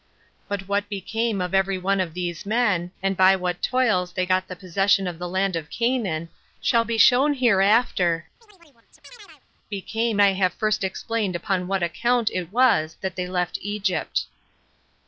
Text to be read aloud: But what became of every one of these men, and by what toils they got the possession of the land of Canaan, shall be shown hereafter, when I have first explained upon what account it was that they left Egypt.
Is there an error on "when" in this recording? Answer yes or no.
yes